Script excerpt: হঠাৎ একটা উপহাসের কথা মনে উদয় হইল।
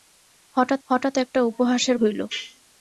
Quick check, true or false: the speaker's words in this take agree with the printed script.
false